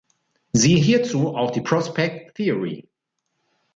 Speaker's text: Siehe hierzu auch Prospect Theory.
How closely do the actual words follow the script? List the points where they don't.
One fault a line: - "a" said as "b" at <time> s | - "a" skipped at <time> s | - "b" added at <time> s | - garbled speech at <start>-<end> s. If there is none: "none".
- "die" added at 1.5 s